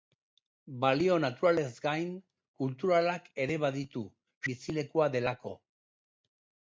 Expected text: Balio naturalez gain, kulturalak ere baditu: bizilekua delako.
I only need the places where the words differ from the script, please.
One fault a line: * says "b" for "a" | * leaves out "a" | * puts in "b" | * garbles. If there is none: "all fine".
all fine